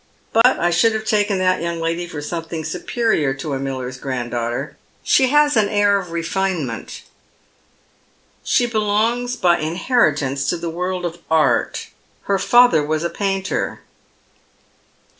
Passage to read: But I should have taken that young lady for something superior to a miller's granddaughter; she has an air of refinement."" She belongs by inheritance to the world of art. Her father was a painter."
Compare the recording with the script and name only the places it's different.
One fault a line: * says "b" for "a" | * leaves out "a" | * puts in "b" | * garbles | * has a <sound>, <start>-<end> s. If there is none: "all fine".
* has a dropout, 0.4-0.4 s